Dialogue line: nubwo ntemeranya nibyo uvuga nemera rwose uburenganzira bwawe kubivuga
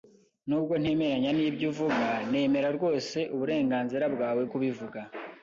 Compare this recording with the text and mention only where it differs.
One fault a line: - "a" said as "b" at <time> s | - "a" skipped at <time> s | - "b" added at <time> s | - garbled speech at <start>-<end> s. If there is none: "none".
none